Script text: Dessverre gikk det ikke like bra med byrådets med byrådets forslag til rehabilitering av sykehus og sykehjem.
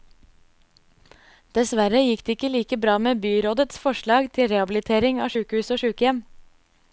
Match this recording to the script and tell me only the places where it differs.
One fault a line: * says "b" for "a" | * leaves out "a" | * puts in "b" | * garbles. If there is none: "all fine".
* leaves out "med byrådets"